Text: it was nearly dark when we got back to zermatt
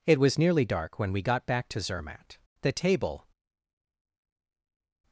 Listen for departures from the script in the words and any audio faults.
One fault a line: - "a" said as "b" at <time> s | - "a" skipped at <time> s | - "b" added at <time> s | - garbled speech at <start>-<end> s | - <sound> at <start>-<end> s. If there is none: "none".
- "the table" added at 2.6 s